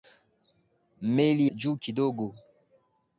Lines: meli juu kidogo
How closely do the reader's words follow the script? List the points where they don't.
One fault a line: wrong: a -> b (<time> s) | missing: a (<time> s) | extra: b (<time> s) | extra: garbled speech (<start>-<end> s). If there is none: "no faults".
no faults